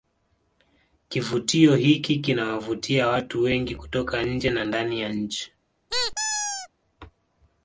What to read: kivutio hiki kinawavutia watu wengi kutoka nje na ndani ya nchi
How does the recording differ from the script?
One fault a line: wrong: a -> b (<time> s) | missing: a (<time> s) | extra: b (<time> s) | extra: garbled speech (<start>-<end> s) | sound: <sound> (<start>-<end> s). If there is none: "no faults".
sound: squeak (5.9-6.7 s)